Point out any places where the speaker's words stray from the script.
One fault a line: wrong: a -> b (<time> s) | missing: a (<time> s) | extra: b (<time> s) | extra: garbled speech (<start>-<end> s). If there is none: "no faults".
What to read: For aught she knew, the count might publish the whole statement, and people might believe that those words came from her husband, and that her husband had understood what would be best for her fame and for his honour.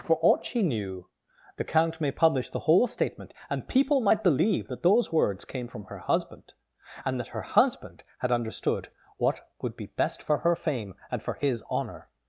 wrong: might -> may (2.0 s)